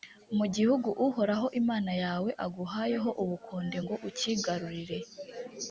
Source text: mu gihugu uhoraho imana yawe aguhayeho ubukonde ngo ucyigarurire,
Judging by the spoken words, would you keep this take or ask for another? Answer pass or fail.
pass